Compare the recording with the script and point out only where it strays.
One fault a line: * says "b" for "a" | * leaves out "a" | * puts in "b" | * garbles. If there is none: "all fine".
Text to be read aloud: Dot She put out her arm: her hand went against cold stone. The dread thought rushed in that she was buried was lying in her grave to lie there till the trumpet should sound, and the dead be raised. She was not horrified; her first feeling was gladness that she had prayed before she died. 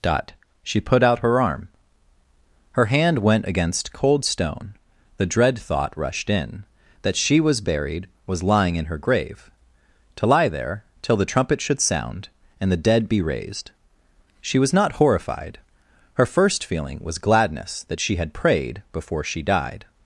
all fine